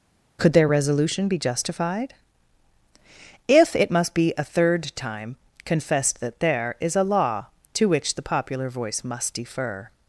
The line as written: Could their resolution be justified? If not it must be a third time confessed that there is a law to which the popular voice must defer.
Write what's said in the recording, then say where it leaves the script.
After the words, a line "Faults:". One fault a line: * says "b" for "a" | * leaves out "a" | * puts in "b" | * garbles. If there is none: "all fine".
Could their resolution be justified? If it must be a third time confessed that there is a law to which the popular voice must defer.
Faults:
* leaves out "not"